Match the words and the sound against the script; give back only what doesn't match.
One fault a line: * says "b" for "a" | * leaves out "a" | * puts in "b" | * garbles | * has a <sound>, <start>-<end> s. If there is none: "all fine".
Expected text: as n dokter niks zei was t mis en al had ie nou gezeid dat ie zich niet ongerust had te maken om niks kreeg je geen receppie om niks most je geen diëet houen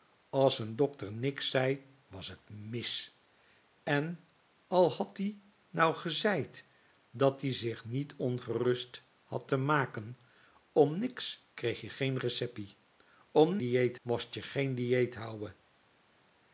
* says "diëet" for "niks"